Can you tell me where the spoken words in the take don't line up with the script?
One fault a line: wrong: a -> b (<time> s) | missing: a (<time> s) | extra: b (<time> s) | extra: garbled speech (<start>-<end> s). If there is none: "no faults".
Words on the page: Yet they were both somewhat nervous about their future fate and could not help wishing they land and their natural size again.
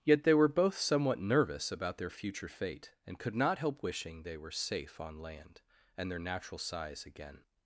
extra: were safe on (4.4 s)